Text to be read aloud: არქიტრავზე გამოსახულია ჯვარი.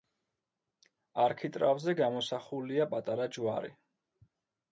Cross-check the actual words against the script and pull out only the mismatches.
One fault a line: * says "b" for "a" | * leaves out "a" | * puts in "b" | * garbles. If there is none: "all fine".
* puts in "პატარა"